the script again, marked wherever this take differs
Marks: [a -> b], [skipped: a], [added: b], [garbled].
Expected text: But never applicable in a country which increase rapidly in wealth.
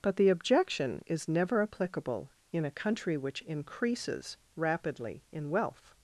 But [added: the objection is] never applicable in a country which [increase -> increases] rapidly in wealth.